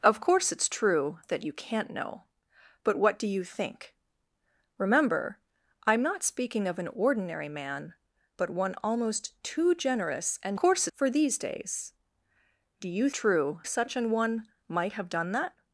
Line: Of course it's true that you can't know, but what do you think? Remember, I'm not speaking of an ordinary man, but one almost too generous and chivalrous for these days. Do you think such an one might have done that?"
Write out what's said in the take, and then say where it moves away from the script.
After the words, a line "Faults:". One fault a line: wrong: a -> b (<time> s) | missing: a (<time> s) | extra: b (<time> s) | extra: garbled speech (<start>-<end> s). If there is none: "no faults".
Of course it's true that you can't know, but what do you think? Remember, I'm not speaking of an ordinary man, but one almost too generous and course for these days. Do you true such an one might have done that?"
Faults:
wrong: chivalrous -> course (10.5 s)
wrong: think -> true (13.1 s)